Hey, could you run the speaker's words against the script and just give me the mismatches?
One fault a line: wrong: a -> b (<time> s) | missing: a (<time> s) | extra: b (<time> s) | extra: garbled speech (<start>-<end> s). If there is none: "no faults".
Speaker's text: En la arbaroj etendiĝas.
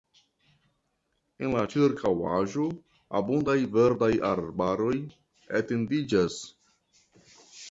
extra: ĉirkaŭaĵo abundaj verdaj (1.7 s)